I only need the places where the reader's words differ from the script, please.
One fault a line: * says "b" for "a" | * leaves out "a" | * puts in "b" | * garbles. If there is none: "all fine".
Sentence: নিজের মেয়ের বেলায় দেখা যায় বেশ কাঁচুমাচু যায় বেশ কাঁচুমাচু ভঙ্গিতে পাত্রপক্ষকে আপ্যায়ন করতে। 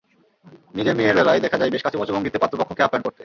* leaves out "যায় বেশ কাঁচুমাচু"